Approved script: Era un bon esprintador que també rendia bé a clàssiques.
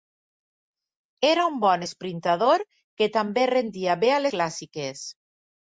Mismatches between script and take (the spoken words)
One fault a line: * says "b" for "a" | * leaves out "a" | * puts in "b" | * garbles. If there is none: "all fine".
all fine